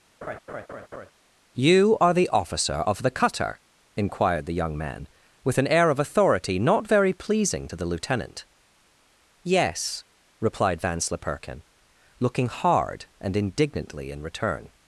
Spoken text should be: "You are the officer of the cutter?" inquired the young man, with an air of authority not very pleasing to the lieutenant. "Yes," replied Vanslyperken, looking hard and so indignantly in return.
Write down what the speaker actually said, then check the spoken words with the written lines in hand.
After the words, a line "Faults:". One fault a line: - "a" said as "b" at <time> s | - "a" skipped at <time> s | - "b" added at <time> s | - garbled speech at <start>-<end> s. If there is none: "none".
"You are the officer of the cutter?" inquired the young man, with an air of authority not very pleasing to the lieutenant. "Yes," replied Vanslyperken, looking hard and indignantly in return.
Faults:
- "so" skipped at 13.3 s